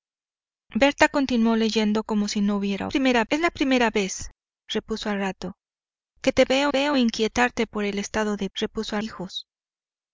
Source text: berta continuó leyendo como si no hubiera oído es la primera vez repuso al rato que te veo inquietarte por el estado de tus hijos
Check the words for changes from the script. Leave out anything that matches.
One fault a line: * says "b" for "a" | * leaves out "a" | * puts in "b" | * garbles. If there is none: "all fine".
* says "primera" for "oído"
* puts in "veo"
* says "repuso" for "tus"